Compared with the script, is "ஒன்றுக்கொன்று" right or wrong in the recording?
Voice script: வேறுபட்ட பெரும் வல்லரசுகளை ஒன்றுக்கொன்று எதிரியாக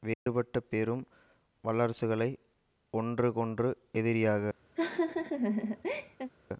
right